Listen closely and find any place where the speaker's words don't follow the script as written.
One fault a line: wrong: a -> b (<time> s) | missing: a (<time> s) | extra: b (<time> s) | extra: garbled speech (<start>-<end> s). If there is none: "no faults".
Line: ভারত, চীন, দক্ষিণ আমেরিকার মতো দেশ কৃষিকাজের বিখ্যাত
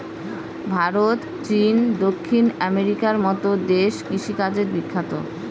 no faults